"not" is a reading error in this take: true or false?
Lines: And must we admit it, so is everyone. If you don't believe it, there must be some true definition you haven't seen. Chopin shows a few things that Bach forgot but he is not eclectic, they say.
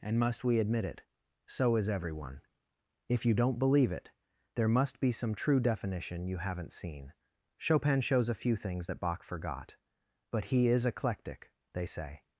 true